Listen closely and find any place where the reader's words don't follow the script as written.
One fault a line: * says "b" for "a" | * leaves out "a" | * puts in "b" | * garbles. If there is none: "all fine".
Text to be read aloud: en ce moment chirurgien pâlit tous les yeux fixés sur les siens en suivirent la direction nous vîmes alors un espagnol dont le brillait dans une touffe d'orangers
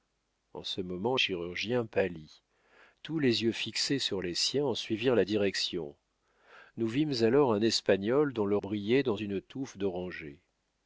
all fine